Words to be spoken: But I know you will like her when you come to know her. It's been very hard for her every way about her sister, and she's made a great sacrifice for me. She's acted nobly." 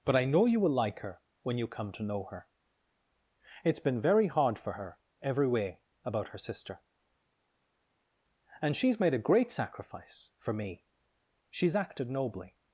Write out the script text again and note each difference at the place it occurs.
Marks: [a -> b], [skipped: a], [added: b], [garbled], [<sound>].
But I know you will like her when you come to know her. It's been very hard for her every way about her sister, and she's made a great sacrifice for me. She's acted nobly."